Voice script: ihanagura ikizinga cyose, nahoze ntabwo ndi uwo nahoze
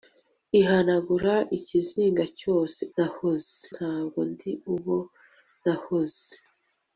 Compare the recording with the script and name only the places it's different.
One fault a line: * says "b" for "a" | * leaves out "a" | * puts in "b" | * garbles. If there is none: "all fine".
all fine